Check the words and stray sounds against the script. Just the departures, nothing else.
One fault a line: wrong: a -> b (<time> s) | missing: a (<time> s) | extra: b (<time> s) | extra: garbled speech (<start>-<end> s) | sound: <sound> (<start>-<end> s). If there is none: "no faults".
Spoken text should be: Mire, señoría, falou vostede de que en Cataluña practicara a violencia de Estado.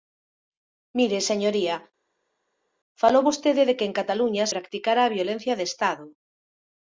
no faults